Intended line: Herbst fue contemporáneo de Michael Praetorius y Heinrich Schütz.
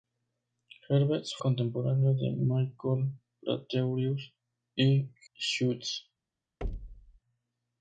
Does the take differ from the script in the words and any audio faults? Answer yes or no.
yes